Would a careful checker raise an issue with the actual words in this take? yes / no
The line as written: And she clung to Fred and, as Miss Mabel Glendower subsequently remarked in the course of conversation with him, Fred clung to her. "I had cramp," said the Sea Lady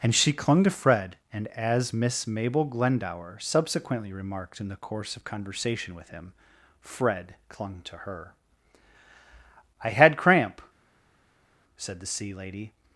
no